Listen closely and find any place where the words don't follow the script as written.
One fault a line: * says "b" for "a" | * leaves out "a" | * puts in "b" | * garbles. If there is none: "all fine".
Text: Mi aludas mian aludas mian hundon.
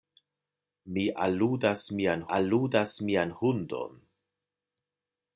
all fine